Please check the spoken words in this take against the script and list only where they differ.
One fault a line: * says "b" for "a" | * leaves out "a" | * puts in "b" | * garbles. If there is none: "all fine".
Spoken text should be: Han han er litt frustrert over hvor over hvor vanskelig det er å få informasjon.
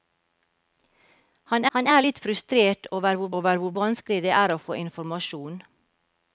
all fine